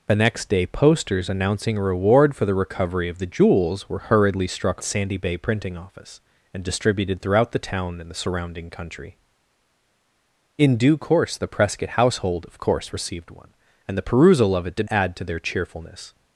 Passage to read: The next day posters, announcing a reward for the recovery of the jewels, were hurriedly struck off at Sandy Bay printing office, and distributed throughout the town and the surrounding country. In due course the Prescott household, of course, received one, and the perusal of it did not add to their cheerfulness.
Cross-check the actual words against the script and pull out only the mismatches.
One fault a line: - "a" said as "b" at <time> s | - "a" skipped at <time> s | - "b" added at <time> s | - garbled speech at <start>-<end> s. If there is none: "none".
- "off at" skipped at 4.8 s
- "not" skipped at 14.9 s